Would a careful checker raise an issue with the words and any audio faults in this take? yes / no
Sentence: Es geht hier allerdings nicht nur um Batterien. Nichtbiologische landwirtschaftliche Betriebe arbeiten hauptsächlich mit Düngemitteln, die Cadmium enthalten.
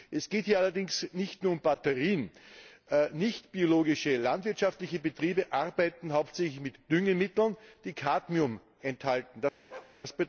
yes